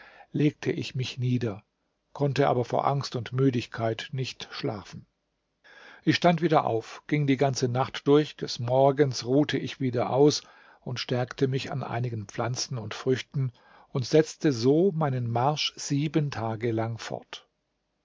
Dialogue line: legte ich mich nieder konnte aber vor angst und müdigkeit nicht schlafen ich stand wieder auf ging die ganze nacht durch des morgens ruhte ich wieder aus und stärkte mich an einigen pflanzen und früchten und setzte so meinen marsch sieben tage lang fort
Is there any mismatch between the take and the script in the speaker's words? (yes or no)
no